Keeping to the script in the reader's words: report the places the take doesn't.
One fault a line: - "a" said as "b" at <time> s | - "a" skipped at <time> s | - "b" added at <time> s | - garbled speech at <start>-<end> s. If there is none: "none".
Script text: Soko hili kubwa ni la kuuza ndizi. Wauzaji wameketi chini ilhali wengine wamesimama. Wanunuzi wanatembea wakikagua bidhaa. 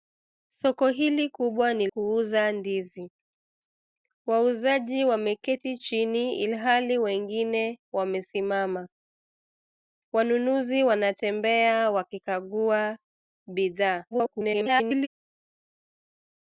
- "la" skipped at 1.9 s
- garbled speech at 14.1-15.1 s